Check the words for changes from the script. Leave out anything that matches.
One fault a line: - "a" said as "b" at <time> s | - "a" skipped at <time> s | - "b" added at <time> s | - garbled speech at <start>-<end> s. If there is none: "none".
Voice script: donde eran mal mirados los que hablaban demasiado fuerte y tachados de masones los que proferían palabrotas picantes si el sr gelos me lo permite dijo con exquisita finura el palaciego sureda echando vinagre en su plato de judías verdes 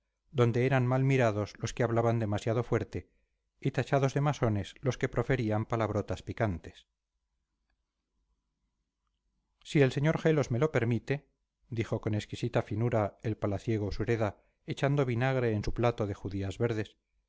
none